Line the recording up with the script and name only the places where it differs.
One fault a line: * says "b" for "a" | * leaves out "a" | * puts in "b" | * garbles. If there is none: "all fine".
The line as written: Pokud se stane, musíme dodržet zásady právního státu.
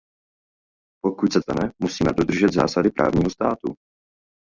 all fine